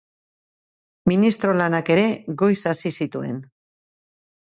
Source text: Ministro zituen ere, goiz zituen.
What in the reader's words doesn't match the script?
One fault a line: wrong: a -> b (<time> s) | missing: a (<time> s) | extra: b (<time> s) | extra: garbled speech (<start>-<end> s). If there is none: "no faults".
wrong: zituen -> lanak (1.6 s)
extra: hasi (2.7 s)